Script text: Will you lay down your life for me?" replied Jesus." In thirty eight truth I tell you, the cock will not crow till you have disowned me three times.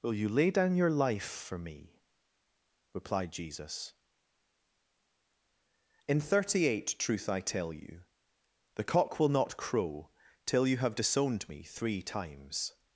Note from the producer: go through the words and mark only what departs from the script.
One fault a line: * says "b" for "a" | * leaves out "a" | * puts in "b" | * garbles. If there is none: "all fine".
all fine